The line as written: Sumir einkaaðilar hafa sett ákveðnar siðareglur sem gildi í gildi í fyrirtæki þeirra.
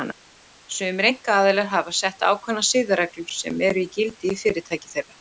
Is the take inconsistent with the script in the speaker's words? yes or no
yes